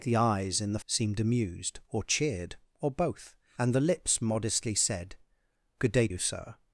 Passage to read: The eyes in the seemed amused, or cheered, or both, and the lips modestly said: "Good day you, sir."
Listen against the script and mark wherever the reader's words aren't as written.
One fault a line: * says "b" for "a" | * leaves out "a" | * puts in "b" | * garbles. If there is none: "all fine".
all fine